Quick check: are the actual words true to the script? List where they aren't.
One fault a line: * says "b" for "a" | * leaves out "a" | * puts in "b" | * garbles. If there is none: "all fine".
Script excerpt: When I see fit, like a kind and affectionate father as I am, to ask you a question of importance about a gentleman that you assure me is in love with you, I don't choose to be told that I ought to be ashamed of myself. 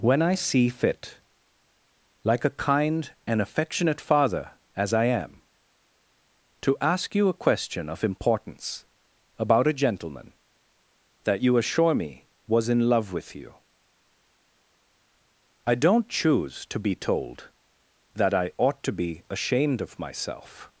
* says "was" for "is"